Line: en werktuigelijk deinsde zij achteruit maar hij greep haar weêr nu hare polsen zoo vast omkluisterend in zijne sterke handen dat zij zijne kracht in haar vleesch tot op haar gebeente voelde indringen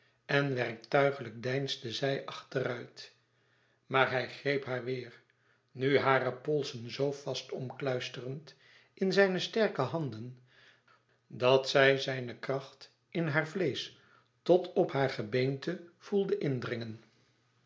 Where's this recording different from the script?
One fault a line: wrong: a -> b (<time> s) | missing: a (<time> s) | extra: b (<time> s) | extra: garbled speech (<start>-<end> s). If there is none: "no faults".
no faults